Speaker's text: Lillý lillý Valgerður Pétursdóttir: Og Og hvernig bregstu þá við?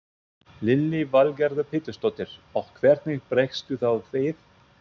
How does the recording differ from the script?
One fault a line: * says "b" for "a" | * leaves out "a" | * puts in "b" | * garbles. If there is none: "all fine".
* leaves out "lillý"
* leaves out "Og"